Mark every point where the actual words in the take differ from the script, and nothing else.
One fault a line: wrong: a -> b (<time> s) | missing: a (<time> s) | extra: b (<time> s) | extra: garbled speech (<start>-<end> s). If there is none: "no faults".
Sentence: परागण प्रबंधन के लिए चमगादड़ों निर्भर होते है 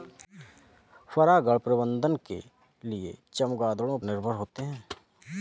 no faults